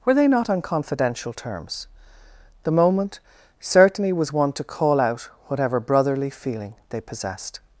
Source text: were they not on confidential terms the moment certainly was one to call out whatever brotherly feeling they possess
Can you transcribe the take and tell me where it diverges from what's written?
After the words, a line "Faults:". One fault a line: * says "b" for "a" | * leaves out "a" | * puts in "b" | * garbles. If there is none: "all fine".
were they not on confidential terms the moment certainly was one to call out whatever brotherly feeling they possessed
Faults:
* says "possessed" for "possess"